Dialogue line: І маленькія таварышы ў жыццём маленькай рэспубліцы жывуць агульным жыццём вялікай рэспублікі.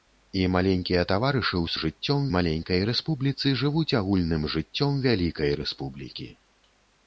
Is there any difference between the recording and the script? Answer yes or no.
no